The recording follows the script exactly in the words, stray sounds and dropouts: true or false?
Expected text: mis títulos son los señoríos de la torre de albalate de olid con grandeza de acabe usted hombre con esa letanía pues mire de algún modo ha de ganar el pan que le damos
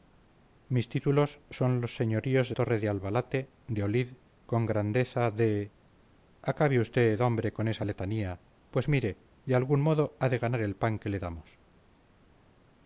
false